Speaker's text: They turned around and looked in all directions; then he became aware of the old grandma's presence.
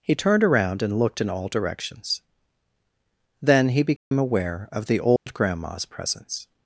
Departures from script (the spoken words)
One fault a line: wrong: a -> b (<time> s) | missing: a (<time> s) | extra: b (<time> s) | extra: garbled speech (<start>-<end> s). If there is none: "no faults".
wrong: They -> He (0.0 s)